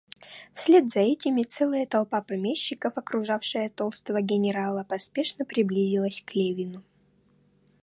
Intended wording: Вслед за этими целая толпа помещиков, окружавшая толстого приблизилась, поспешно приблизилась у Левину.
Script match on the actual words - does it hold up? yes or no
no